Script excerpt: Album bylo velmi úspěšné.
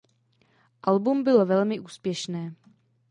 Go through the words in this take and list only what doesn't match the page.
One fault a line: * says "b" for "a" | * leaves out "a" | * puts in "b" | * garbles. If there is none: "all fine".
all fine